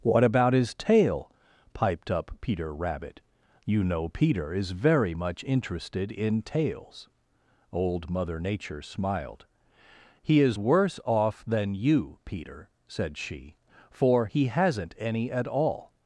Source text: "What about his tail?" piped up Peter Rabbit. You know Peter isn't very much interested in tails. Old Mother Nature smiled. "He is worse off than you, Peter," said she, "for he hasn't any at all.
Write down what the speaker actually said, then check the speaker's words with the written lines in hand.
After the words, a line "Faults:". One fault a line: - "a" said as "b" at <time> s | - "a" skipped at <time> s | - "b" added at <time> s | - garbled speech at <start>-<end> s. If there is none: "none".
"What about his tail?" piped up Peter Rabbit. You know Peter is very much interested in tails. Old Mother Nature smiled. "He is worse off than you, Peter," said she, "for he hasn't any at all.
Faults:
- "isn't" said as "is" at 4.5 s